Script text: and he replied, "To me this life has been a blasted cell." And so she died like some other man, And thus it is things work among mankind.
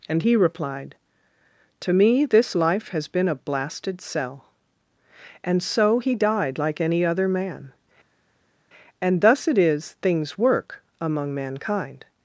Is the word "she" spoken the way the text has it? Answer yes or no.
no